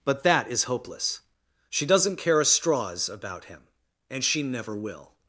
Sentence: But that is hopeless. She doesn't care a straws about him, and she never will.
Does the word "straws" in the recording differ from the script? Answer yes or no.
no